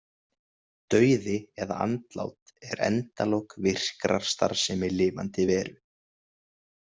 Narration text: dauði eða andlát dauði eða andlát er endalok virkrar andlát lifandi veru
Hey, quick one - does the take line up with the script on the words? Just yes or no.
no